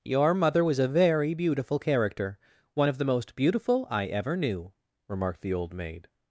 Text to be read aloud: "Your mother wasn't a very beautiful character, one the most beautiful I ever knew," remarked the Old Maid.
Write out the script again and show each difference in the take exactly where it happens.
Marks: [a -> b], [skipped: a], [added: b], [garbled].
"Your mother [wasn't -> was] a very beautiful character, one [added: of] the most beautiful I ever knew," remarked the Old Maid.